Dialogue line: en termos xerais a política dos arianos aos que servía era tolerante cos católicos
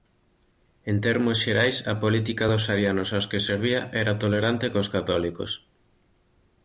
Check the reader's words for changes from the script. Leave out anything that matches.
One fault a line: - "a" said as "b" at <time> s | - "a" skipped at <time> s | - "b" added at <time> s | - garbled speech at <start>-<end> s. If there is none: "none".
none